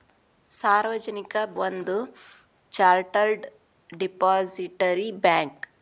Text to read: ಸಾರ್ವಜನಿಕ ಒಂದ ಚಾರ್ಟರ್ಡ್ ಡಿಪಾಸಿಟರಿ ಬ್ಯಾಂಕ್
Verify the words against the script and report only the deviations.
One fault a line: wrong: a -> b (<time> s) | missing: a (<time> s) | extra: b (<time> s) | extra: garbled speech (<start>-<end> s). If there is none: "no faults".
no faults